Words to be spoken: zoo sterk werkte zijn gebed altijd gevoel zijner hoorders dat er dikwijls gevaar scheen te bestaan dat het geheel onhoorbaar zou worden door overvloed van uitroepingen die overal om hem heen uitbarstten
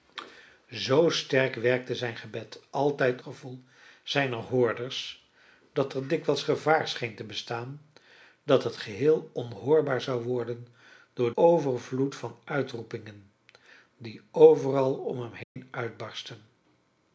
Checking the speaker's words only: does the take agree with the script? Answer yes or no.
yes